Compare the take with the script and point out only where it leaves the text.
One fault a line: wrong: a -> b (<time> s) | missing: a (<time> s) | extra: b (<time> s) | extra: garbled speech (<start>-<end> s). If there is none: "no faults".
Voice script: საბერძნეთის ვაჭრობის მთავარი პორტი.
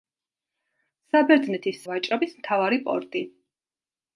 no faults